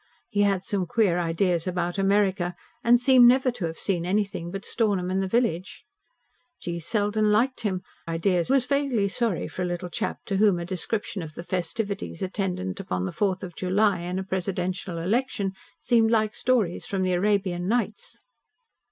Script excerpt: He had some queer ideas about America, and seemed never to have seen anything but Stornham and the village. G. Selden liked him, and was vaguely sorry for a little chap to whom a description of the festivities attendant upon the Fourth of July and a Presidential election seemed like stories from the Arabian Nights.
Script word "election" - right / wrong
right